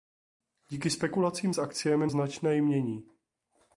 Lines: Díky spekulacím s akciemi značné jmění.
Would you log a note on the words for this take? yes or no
no